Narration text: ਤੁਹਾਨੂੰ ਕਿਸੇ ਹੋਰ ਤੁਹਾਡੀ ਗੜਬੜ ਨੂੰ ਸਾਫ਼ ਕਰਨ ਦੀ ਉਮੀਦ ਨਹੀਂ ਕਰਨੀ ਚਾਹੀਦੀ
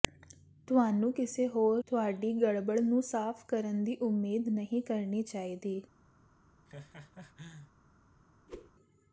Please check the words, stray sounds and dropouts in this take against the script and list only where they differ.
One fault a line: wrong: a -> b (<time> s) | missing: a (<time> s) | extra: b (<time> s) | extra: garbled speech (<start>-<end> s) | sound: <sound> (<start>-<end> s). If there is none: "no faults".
sound: laugh (6.7-7.7 s)
sound: whoosh (8.5-8.7 s)